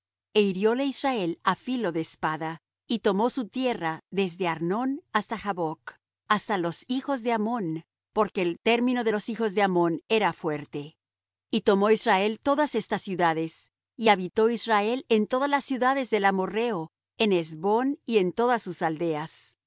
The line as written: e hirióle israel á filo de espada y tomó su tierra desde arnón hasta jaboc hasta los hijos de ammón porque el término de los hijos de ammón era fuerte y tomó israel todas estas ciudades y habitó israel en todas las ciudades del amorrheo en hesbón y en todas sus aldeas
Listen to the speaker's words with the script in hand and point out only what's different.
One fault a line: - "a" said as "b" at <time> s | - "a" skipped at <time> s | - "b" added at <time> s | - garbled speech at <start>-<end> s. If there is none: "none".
none